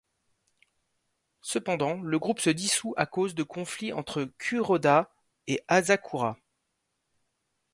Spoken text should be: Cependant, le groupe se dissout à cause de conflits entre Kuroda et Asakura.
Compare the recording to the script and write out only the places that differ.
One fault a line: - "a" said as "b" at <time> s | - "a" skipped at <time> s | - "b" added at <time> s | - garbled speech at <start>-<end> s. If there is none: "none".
none